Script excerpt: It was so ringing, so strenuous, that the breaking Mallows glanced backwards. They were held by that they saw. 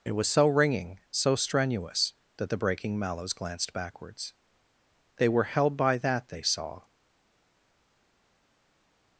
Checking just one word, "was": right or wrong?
right